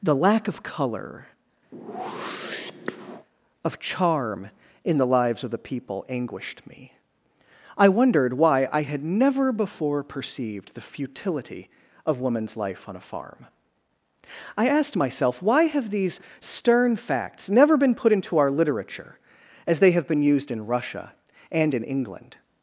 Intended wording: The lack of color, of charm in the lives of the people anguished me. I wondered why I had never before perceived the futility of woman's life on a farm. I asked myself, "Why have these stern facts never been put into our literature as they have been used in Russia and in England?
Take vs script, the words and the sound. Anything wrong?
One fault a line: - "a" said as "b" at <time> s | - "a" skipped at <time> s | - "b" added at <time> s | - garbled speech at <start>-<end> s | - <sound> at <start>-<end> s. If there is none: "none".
- whoosh at 1.7-3.3 s